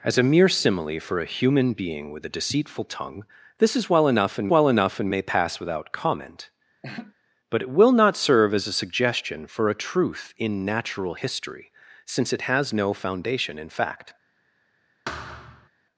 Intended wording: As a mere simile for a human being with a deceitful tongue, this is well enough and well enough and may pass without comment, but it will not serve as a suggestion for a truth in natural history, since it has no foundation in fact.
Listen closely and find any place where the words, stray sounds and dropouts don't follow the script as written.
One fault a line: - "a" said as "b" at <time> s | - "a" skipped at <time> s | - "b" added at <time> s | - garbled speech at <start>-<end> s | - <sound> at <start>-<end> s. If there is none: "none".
- laugh at 6.8-7.1 s
- thud at 15.1-15.7 s